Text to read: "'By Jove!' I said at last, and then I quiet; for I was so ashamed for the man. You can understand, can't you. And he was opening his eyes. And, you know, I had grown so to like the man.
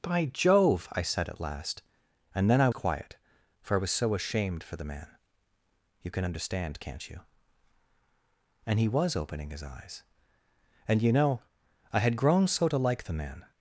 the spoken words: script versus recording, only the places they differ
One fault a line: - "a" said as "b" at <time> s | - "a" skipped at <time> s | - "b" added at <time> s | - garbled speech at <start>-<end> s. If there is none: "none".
none